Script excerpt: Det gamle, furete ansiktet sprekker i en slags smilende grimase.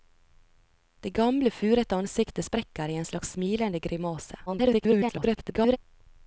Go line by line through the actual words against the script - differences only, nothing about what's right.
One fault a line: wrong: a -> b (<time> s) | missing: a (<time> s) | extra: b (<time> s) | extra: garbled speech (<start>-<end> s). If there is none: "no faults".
extra: garbled speech (4.5-5.8 s)